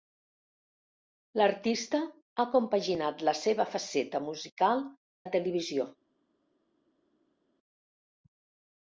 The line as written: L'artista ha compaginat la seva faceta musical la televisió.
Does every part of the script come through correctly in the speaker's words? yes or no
yes